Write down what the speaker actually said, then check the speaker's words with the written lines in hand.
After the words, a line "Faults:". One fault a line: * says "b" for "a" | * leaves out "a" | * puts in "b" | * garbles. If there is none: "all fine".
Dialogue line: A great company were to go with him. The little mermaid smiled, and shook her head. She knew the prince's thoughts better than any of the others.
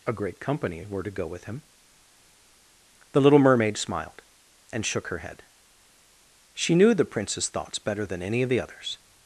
A great company were to go with him. The little mermaid smiled, and shook her head. She knew the prince's thoughts better than any of the others.
Faults:
all fine